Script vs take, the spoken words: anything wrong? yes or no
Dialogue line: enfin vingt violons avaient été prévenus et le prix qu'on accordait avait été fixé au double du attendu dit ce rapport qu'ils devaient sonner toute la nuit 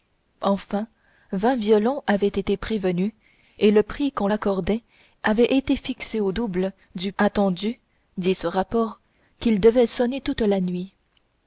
no